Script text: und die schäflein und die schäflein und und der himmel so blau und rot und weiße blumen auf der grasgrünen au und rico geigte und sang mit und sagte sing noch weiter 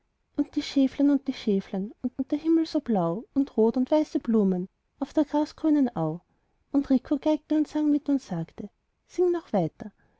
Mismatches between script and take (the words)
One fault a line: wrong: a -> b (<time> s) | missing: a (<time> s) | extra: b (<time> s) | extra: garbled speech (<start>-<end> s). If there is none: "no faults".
no faults